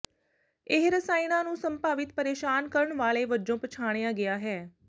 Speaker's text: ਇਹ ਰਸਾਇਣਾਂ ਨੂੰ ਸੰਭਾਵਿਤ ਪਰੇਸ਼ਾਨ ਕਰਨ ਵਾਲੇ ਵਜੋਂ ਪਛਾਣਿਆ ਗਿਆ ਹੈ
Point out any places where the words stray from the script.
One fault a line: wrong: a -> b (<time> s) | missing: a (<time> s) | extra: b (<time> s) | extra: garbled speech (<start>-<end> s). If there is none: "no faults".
no faults